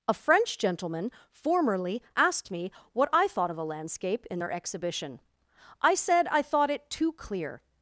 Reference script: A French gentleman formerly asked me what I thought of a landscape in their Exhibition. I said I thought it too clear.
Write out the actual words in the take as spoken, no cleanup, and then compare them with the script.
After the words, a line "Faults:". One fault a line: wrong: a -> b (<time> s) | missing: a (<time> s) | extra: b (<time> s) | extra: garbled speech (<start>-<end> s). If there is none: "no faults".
A French gentleman formerly asked me what I thought of a landscape in their Exhibition. I said I thought it too clear.
Faults:
no faults